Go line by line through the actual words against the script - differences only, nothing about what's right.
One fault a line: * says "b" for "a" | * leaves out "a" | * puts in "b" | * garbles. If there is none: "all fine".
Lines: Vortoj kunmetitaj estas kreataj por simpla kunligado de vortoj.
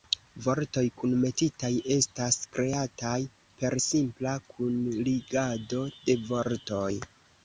* says "per" for "por"